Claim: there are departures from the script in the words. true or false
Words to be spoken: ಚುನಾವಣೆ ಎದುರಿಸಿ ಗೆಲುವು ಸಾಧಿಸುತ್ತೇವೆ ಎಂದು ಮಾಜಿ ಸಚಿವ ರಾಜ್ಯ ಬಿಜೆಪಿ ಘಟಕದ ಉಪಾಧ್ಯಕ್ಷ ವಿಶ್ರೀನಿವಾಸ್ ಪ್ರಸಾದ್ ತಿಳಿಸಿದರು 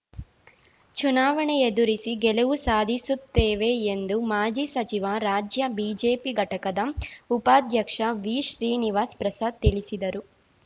false